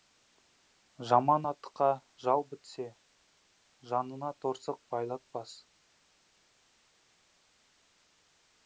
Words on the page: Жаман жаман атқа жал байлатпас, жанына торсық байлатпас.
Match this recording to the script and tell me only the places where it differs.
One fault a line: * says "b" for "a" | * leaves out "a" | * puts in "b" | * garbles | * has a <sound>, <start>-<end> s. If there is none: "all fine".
* leaves out "жаман"
* says "бітсе" for "байлатпас"